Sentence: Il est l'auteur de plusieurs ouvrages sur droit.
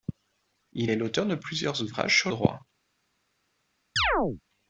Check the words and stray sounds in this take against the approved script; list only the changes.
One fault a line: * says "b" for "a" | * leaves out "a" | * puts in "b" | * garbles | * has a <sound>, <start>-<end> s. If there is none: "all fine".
* has a chirp, 4.0-4.4 s